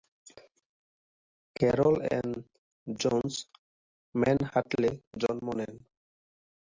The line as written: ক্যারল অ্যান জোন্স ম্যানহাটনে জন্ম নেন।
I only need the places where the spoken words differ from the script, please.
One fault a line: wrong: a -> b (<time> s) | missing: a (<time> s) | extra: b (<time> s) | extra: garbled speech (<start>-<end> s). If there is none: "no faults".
no faults